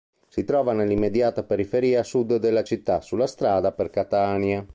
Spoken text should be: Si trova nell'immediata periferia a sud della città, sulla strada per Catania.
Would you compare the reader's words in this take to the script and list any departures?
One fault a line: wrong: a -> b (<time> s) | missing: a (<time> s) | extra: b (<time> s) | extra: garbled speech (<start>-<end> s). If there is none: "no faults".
no faults